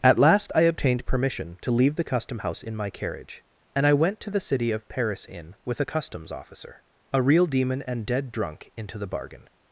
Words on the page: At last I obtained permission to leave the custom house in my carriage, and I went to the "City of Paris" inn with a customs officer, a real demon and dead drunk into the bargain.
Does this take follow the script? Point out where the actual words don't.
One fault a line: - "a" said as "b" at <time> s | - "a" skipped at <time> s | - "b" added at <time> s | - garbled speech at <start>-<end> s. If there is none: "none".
none